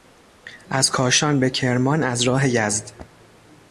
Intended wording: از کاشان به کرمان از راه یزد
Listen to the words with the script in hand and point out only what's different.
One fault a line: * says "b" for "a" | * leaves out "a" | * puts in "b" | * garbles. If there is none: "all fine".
all fine